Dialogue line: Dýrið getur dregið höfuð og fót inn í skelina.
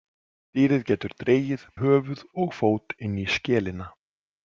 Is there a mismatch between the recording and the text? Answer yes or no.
no